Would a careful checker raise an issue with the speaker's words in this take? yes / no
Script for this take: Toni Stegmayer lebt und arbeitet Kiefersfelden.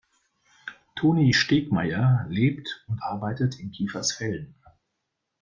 yes